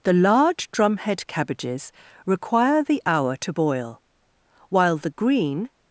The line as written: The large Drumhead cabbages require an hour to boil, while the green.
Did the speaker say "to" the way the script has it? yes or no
yes